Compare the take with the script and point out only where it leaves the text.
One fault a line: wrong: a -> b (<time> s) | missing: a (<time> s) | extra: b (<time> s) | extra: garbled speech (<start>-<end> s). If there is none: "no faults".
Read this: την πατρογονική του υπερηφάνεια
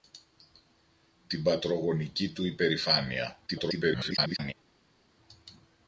extra: garbled speech (3.5-4.5 s)